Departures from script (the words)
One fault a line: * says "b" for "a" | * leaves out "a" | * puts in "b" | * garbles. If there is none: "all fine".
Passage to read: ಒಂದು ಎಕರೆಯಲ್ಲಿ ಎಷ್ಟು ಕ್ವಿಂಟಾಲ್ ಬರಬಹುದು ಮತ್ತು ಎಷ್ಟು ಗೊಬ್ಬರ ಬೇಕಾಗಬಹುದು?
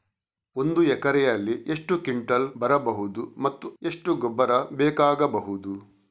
all fine